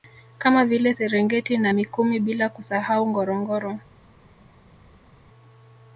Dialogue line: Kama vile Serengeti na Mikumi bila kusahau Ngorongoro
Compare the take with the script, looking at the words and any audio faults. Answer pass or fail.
pass